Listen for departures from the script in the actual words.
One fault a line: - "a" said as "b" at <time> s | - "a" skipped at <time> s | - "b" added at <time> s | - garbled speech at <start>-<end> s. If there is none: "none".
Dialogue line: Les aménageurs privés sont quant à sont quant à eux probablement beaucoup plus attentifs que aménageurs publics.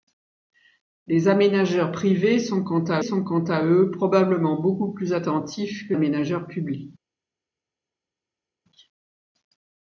none